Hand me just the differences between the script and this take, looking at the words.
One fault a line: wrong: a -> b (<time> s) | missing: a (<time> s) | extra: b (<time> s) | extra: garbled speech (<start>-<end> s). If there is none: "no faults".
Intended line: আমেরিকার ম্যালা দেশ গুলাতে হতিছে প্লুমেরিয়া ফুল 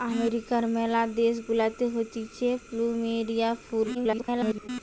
extra: garbled speech (3.9-4.7 s)